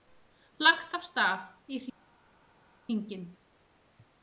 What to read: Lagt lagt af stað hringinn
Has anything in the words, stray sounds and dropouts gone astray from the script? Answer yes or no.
yes